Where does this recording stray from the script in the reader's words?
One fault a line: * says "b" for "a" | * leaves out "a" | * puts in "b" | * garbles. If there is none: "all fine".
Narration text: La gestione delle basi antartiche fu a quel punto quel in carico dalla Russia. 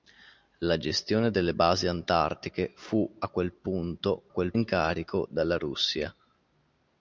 all fine